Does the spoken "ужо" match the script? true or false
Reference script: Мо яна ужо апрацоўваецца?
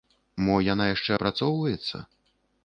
false